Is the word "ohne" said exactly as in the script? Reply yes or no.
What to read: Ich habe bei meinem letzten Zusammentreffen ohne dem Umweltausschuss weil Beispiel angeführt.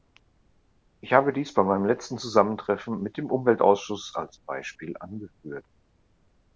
no